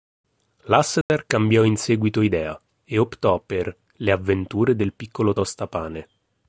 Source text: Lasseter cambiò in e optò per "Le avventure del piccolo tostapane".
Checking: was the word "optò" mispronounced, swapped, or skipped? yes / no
no